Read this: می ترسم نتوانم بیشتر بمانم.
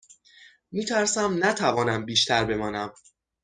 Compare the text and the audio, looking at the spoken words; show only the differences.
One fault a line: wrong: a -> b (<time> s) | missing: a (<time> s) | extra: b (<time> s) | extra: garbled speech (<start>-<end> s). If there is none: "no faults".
no faults